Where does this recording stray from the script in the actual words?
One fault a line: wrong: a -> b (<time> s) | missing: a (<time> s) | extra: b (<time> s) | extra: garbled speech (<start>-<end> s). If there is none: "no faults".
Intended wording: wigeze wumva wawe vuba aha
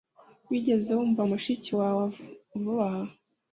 extra: mushiki (1.3 s)